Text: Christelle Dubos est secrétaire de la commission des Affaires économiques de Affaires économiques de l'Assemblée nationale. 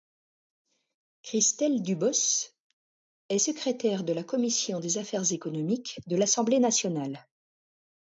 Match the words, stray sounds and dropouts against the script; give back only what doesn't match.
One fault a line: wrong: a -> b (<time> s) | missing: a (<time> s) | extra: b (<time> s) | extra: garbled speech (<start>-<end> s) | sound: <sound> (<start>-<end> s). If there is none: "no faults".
missing: Affaires économiques de (6.1 s)